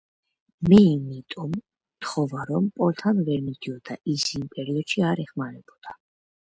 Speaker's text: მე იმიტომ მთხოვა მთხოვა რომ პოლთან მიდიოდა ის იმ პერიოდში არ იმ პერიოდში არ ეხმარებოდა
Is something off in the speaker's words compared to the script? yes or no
yes